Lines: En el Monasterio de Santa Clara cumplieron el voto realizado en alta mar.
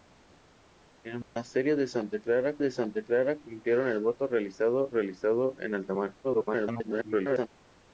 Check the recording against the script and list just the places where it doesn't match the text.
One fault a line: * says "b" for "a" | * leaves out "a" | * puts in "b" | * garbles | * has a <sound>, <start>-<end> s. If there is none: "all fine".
* has a dropout, 1.2-1.4 s
* puts in "de Santa Clara"
* puts in "realizado"
* garbles